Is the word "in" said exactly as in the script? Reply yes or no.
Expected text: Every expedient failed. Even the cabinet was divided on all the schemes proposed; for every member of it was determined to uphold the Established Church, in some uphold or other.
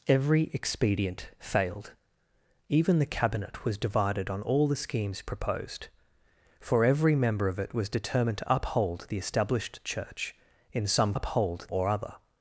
yes